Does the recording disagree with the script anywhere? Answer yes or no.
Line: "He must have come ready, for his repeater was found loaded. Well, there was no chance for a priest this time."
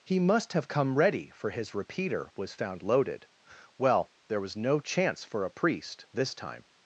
no